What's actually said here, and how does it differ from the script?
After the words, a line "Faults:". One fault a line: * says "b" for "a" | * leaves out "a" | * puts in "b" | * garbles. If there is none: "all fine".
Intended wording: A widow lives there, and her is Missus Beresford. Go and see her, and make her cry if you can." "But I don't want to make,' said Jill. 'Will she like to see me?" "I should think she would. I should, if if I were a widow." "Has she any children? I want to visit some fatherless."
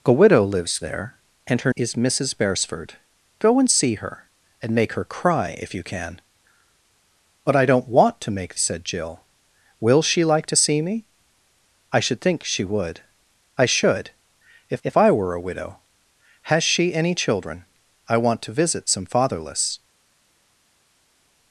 A widow lives there, and her is Missus Beresford. Go and see her, and make her cry if you can." "But I don't want to make,' said Jill. 'Will she like to see me?" "I should think she would. I should, if if I were a widow." "Has she any children? I want to visit some fatherless."
Faults:
all fine